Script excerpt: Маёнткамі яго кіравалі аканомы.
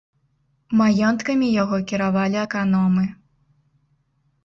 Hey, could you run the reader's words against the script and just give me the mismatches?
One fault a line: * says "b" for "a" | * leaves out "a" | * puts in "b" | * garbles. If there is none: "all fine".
all fine